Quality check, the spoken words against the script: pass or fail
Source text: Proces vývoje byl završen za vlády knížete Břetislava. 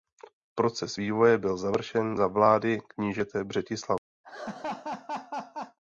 pass